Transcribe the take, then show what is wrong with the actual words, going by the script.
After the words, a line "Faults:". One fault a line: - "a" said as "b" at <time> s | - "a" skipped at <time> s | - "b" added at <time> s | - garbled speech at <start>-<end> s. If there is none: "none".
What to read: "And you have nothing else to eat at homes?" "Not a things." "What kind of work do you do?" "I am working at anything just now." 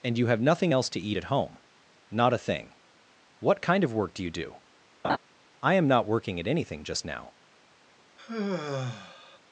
"And you have nothing else to eat at home?" "Not a thing." "What kind of work do you do?" "I am not working at anything just now."
Faults:
- "homes" said as "home" at 1.2 s
- "things" said as "thing" at 2.4 s
- "not" added at 5.9 s